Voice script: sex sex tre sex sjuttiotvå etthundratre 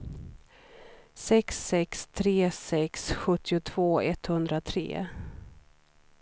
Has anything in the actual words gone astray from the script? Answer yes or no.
no